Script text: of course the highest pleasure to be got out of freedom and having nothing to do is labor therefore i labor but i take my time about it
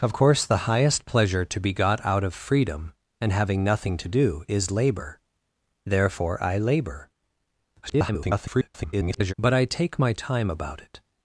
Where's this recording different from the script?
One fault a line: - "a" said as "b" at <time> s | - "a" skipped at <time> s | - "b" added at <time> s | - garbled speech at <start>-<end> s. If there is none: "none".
- garbled speech at 7.8-9.3 s